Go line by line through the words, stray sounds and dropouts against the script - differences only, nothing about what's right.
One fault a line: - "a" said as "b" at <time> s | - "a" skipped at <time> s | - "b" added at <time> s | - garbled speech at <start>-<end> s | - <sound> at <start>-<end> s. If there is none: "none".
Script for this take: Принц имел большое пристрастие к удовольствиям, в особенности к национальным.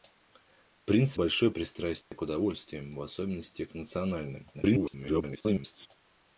- "имел" skipped at 1.2 s
- dropout at 2.0-2.1 s
- garbled speech at 4.5-5.9 s